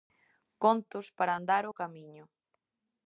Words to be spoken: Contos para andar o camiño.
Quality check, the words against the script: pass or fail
pass